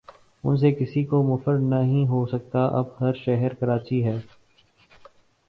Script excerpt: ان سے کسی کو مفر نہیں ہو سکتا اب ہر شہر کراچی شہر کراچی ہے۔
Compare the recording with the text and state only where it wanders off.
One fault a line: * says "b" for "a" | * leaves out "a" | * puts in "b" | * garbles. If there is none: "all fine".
* leaves out "شہر کراچی"